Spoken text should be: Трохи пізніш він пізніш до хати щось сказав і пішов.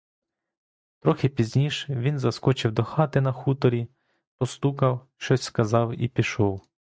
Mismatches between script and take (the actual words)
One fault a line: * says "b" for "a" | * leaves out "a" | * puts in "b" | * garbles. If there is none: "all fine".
* says "заскочив" for "пізніш"
* puts in "на хуторі постукав"